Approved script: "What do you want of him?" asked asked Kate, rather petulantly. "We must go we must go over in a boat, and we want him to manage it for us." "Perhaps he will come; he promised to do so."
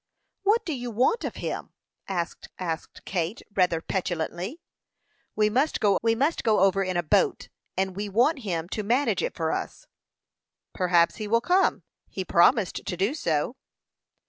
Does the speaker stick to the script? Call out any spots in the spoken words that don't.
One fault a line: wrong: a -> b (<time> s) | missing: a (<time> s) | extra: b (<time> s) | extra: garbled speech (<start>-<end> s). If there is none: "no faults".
no faults